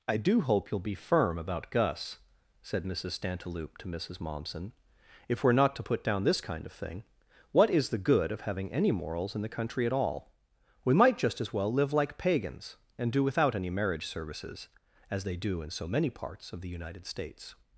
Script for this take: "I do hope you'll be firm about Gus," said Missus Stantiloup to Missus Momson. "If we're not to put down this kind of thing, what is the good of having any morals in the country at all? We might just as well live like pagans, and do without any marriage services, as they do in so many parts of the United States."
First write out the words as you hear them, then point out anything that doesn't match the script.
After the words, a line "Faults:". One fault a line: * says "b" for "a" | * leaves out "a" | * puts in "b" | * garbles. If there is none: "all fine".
"I do hope you'll be firm about Gus," said Missus Stantiloup to Missus Momson. "If we're not to put down this kind of thing, what is the good of having any morals in the country at all? We might just as well live like pagans, and do without any marriage services, as they do in so many parts of the United States."
Faults:
all fine